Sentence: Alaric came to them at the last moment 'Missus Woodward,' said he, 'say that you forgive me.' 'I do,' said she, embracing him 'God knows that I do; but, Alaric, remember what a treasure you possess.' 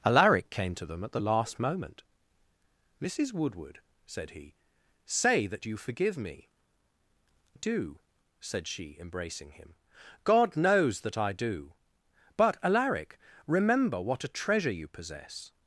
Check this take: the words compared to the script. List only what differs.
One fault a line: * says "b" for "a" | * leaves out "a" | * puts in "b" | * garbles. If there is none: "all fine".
* leaves out "I"